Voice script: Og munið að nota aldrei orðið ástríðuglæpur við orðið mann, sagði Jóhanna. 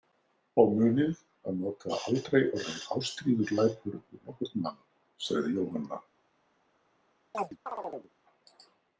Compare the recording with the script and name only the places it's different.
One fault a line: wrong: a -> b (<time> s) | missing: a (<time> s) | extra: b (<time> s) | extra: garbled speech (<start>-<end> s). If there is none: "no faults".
wrong: orðið -> nokkurn (4.3 s)